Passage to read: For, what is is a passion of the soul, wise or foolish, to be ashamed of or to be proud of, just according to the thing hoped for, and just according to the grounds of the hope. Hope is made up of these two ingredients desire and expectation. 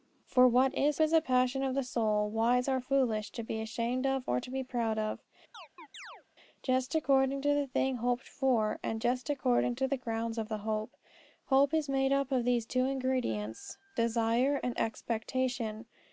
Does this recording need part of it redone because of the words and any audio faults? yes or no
yes